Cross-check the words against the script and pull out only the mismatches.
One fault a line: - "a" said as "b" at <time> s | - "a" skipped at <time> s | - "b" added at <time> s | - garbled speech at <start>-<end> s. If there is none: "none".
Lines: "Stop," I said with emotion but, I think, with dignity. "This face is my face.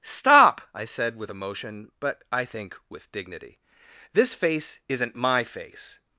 - "is" said as "isn't" at 4.9 s